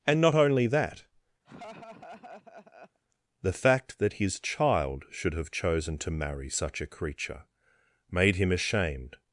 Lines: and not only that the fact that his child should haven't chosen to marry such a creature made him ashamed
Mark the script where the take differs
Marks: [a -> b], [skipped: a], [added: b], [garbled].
and not only that the fact that his child should [haven't -> have] chosen to marry such a creature made him ashamed